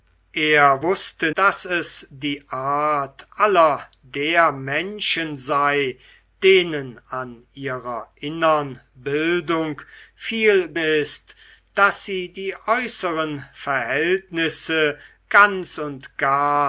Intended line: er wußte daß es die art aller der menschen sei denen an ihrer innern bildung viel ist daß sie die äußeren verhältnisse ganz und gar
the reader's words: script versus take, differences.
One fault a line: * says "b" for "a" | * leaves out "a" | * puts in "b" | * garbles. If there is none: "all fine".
all fine